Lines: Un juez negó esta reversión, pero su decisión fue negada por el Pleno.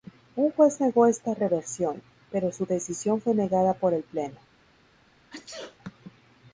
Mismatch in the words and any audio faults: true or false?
true